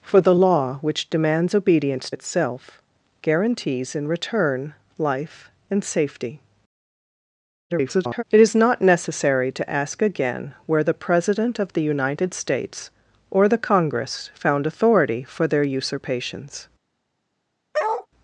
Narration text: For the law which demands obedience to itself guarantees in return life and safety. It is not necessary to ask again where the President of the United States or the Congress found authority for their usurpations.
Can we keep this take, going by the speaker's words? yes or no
no